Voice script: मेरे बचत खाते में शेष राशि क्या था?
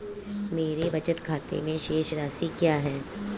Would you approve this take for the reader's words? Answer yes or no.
no